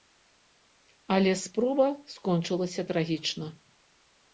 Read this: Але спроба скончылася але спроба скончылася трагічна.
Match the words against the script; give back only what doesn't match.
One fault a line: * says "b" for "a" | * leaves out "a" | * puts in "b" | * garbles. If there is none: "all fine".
* leaves out "але спроба скончылася"